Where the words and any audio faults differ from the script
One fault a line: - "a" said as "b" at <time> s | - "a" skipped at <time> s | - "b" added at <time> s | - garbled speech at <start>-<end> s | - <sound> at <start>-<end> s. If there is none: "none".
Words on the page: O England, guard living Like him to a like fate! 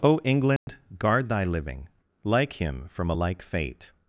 - dropout at 0.6-0.7 s
- "thy" added at 1.3 s
- "to" said as "from" at 2.9 s